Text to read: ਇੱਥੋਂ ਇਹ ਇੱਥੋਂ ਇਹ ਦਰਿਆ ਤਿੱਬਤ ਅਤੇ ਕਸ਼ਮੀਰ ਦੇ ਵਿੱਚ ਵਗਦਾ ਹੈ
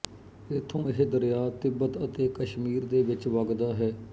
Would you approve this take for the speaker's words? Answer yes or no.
no